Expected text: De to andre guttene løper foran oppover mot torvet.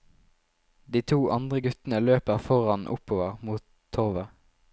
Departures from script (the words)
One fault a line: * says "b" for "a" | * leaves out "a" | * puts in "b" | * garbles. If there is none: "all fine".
all fine